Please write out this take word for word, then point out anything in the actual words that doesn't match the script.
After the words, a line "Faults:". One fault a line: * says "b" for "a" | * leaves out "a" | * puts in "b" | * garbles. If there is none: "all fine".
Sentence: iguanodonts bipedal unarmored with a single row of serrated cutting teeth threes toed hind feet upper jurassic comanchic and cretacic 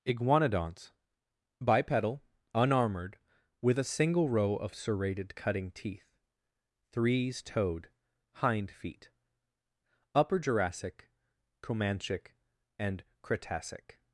iguanodonts bipedal unarmored with a single row of serrated cutting teeth threes toed hind feet upper jurassic comanchic and cretacic
Faults:
all fine